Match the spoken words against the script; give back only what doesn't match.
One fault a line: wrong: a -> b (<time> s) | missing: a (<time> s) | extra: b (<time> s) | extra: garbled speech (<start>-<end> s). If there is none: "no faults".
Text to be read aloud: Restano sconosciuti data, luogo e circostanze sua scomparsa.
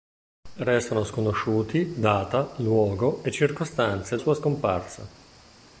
no faults